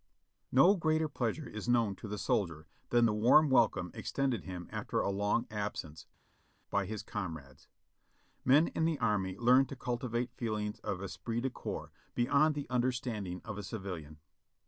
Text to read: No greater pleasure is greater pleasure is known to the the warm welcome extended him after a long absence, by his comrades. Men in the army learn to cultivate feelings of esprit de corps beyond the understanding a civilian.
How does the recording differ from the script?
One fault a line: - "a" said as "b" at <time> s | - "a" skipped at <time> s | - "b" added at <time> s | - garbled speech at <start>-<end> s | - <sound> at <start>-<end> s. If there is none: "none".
- "greater pleasure is" skipped at 1.7 s
- "soldier than" added at 2.2 s
- "of" added at 13.4 s